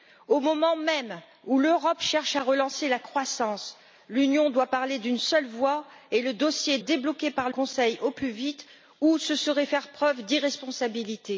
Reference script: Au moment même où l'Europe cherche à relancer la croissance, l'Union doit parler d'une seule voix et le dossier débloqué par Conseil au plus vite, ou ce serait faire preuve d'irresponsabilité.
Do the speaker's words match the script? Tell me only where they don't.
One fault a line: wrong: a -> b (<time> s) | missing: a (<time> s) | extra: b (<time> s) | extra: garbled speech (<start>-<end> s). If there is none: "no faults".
no faults